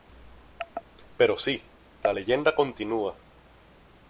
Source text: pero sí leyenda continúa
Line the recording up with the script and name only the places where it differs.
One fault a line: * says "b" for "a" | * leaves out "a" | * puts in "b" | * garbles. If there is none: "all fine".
* puts in "la"